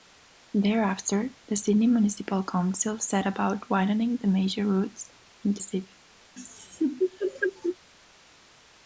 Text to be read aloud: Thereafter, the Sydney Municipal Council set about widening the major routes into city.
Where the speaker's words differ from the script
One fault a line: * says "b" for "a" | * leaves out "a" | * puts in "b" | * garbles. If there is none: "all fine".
all fine